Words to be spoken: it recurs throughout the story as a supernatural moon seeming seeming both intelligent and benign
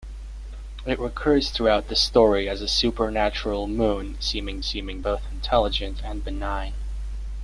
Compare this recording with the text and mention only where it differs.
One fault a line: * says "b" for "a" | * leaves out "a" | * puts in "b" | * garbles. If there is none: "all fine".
all fine